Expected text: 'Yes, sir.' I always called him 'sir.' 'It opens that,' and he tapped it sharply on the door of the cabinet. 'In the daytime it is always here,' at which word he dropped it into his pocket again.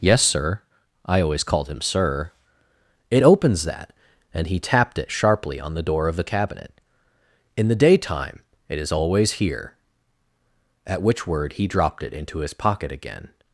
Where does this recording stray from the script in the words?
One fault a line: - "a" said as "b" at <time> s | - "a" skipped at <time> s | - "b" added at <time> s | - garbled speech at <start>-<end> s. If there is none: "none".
none